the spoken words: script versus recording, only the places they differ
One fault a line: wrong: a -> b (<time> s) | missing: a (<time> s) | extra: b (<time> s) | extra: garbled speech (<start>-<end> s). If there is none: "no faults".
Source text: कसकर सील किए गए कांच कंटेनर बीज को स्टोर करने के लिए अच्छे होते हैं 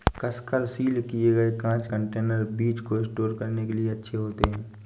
no faults